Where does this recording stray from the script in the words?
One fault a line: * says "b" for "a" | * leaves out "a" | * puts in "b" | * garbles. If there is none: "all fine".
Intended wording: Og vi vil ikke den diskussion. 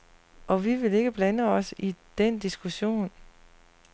* puts in "blande os i"